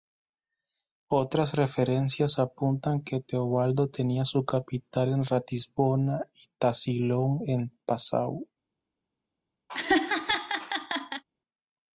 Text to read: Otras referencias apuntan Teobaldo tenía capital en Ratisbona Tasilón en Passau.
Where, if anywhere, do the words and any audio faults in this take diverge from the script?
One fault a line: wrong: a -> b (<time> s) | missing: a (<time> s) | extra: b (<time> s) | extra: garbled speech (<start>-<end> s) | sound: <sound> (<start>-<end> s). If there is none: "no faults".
extra: que (3.0 s)
extra: su (4.2 s)
extra: y (6.3 s)
sound: laugh (9.7-11.2 s)